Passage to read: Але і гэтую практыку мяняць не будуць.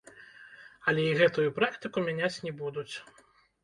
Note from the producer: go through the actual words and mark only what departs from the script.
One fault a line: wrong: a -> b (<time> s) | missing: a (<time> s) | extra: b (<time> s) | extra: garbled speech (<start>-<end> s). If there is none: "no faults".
no faults